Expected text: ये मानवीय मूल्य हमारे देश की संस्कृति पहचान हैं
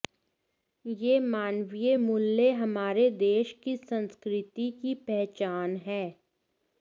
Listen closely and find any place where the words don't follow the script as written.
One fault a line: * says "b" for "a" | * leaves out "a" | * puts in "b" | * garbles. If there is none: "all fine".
* puts in "की"